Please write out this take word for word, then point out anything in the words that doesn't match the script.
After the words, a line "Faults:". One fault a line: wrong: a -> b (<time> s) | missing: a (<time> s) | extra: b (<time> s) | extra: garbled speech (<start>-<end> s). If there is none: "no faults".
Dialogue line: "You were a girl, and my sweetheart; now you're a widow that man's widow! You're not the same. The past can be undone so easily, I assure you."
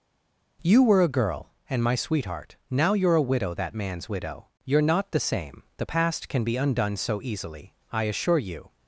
"You were a girl, and my sweetheart; now you're a widow that man's widow! You're not the same. The past can be undone so easily, I assure you."
Faults:
no faults